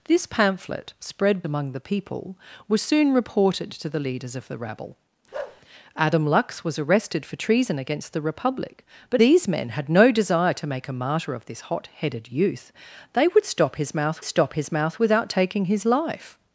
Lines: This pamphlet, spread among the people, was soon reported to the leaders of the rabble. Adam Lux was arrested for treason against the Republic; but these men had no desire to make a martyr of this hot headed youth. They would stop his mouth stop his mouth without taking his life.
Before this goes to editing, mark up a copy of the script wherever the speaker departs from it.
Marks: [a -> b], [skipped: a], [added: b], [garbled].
This pamphlet, spread among the people, was soon reported to the leaders of the rabble. Adam Lux was arrested for treason against the Republic; but these men had no desire to make a martyr of this hot headed youth. They would stop his mouth stop his mouth without taking his life.